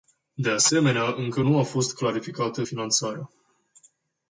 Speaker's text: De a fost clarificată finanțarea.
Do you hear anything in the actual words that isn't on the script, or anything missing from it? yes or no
yes